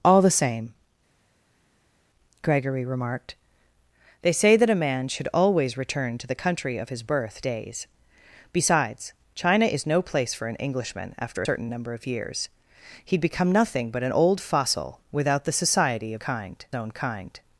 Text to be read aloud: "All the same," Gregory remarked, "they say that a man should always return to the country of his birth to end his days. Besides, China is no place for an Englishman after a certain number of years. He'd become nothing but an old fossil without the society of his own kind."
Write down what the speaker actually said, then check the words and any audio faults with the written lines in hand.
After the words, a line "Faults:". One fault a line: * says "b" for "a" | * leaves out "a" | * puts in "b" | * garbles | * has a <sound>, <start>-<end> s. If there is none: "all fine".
"All the same," Gregory remarked, "they say that a man should always return to the country of his birth days. Besides, China is no place for an Englishman after certain number of years. He'd become nothing but an old fossil without the society of kind own kind."
Faults:
* leaves out "to end his"
* leaves out "a"
* says "kind" for "his"